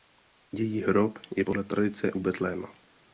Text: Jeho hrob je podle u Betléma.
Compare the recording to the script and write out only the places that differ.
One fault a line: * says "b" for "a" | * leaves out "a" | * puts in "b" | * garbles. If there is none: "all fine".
* says "Její" for "Jeho"
* puts in "tradice"